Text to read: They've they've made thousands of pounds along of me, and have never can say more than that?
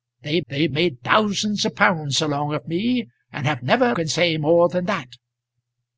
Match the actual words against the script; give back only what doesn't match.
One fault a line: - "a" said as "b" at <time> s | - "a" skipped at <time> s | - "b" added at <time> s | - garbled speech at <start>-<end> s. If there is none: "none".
none